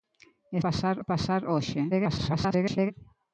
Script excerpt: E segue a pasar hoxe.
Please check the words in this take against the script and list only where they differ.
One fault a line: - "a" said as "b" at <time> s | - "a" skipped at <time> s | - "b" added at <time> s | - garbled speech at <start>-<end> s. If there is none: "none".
- "segue" said as "pasar" at 0.6 s
- garbled speech at 1.9-2.9 s